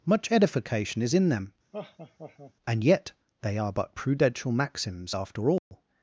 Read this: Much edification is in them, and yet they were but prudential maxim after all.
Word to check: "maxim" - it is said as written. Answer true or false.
false